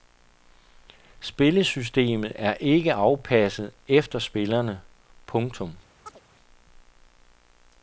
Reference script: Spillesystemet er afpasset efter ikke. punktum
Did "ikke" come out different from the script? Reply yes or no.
yes